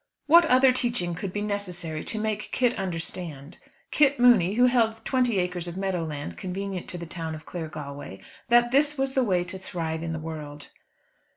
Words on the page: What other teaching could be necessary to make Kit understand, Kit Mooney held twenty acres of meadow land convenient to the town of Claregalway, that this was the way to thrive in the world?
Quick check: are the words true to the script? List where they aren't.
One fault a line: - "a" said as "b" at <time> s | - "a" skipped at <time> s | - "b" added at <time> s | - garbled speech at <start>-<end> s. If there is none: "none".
- "who" added at 4.5 s